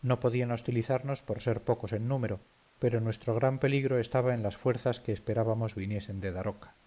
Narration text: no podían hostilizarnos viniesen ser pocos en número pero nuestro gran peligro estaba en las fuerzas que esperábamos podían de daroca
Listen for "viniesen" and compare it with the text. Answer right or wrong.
wrong